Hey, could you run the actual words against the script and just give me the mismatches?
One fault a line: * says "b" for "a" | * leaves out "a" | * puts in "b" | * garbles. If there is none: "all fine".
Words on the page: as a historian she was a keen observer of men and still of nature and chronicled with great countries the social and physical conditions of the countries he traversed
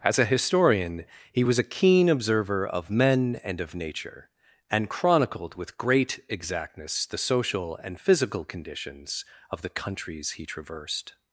* says "he" for "she"
* leaves out "still"
* says "exactness" for "countries"